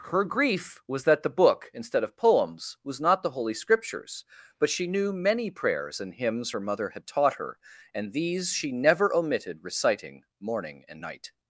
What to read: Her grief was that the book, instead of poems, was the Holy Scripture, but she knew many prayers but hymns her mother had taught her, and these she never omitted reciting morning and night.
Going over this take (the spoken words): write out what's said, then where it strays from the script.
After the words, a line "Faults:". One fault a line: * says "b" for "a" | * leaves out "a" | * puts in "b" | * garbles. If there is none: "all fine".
Her grief was that the book, instead of poems, was not the Holy Scriptures, but she knew many prayers and hymns her mother had taught her, and these she never omitted reciting morning and night.
Faults:
* puts in "not"
* says "Scriptures" for "Scripture"
* says "and" for "but"